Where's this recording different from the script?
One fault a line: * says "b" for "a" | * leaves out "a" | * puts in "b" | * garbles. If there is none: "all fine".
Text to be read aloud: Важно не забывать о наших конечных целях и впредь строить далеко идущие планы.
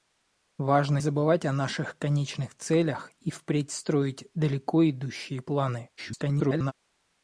* leaves out "не"
* garbles